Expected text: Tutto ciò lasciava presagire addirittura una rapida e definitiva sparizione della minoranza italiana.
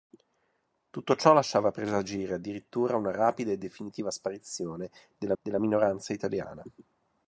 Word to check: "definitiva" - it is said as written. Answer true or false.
true